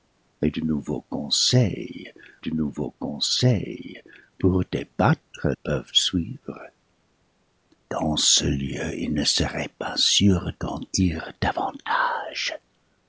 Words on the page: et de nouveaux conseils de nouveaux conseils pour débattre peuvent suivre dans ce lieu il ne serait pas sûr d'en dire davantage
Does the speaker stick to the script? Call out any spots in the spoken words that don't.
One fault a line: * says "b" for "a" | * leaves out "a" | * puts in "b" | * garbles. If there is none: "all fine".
all fine